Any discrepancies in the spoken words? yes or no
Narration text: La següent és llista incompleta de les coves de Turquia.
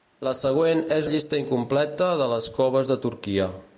no